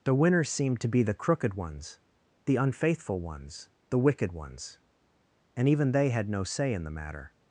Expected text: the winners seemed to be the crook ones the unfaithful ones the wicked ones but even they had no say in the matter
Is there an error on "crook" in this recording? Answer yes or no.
yes